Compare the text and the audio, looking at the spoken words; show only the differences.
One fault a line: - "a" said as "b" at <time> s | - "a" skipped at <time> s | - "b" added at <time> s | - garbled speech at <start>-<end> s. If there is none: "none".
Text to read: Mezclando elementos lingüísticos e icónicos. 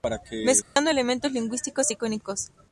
none